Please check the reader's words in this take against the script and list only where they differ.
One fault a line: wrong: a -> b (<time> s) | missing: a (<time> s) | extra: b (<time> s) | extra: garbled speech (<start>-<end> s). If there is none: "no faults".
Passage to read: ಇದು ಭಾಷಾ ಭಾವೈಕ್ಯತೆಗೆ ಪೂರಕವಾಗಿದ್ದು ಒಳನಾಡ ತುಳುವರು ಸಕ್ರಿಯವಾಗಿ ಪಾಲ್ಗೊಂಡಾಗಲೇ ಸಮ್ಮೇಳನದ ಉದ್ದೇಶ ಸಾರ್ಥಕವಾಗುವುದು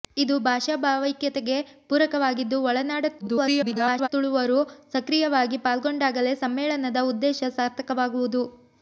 extra: garbled speech (3.2-4.1 s)